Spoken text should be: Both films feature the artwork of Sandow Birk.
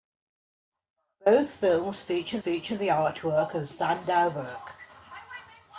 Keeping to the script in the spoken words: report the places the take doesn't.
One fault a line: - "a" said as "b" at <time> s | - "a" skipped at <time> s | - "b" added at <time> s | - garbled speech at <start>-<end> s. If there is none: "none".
- "feature" added at 2.4 s